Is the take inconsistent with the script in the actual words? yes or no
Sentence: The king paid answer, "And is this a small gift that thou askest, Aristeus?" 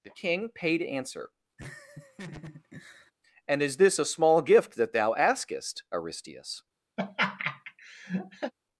no